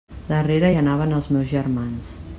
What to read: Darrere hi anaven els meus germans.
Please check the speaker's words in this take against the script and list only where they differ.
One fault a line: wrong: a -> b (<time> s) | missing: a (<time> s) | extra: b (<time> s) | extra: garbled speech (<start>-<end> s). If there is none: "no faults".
no faults